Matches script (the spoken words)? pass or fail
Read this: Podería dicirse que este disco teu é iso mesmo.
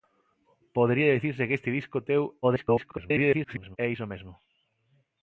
fail